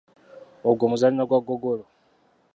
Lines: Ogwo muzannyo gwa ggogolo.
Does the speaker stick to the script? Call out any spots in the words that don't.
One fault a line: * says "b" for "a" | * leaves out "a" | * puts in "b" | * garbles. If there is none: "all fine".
all fine